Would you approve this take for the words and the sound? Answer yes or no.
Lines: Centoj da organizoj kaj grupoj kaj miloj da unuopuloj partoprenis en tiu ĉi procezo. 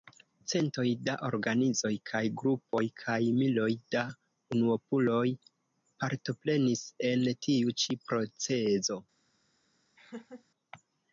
no